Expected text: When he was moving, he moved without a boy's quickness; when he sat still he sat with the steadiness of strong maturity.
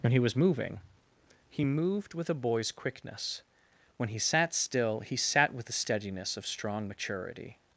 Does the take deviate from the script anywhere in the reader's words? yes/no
yes